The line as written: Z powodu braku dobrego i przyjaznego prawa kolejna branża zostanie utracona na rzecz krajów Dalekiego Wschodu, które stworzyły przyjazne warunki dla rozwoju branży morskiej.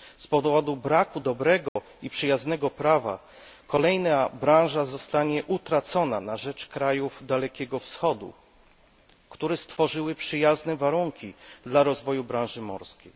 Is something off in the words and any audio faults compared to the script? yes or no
yes